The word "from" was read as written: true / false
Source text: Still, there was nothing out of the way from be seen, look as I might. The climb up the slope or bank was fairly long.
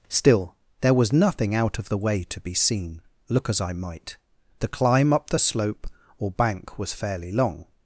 false